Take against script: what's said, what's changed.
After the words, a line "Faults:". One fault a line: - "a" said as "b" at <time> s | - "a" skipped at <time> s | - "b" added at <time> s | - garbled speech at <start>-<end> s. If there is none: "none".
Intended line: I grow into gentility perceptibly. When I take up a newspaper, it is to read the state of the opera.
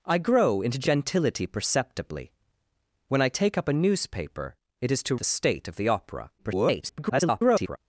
I grow into gentility perceptibly. When I take up a newspaper, it is to the state of the opera. [garbled]
Faults:
- "read" skipped at 5.2 s
- garbled speech at 6.4-7.8 s